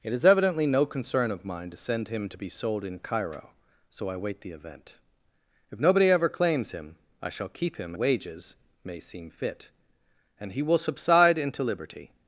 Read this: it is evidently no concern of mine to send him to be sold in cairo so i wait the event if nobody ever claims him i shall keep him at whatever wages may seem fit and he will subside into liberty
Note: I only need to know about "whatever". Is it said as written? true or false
false